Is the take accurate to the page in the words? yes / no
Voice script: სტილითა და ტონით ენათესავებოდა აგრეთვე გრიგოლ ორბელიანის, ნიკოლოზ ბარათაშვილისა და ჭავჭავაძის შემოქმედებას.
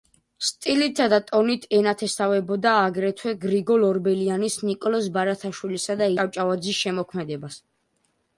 yes